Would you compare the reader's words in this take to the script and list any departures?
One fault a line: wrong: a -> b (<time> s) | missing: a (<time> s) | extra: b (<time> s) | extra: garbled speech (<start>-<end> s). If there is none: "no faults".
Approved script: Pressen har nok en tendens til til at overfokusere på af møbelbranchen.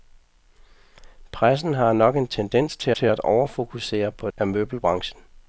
no faults